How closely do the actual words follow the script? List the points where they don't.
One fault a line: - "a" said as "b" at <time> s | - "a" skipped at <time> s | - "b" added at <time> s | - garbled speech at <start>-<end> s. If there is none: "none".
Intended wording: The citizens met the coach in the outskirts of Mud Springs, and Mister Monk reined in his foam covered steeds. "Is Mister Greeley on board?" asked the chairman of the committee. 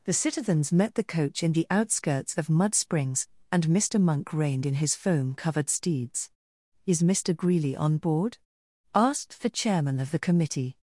none